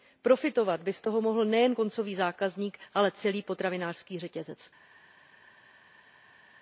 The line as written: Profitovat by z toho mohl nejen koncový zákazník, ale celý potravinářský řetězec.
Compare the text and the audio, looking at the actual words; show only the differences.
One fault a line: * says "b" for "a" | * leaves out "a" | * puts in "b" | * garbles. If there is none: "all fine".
all fine